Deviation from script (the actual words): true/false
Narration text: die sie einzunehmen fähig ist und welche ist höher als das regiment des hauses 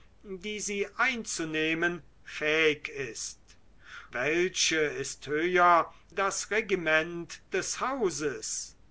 true